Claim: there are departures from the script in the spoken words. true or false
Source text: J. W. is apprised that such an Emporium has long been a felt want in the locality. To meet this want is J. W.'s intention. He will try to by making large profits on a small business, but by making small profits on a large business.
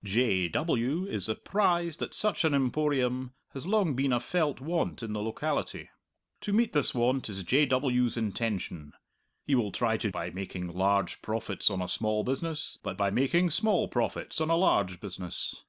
false